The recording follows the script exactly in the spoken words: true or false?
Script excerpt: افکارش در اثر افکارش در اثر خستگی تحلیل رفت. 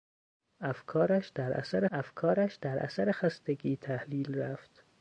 true